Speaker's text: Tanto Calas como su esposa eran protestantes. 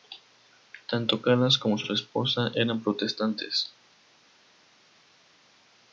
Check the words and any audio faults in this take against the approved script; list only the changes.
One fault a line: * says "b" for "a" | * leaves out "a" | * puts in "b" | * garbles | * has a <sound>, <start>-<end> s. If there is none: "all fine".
* puts in "su"